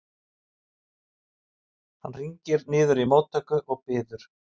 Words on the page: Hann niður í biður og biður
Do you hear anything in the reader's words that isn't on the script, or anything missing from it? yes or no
yes